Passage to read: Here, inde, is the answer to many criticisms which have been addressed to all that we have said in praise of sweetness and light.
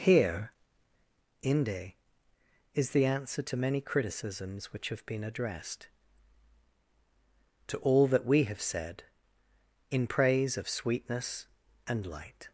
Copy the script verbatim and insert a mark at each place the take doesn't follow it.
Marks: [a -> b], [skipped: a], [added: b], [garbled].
Here, inde, is the answer to many criticisms which have been addressed to all that we have said in praise of sweetness and light.